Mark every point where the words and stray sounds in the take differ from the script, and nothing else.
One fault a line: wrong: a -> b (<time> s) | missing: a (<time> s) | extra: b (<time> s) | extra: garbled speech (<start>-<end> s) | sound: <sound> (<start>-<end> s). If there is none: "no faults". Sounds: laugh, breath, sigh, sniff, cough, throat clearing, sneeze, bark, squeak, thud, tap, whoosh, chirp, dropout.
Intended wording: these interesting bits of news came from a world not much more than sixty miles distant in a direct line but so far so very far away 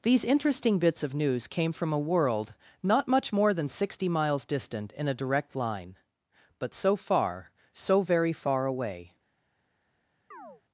sound: chirp (10.3-10.6 s)